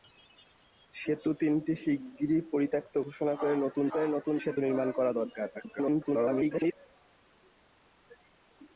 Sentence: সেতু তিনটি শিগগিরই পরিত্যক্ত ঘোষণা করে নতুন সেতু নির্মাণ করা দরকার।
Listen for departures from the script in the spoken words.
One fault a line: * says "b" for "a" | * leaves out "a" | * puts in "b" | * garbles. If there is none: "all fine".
* puts in "করে নতুন"
* garbles